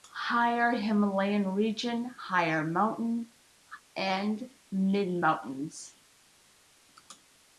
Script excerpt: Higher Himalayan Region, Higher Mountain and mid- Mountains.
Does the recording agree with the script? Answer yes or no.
yes